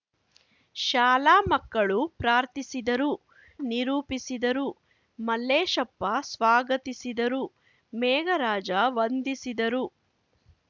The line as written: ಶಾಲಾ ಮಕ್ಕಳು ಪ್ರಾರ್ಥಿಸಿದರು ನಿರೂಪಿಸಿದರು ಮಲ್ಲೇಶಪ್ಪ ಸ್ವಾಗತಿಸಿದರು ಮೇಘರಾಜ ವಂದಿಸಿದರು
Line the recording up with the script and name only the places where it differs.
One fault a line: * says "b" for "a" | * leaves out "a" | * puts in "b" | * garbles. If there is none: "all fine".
all fine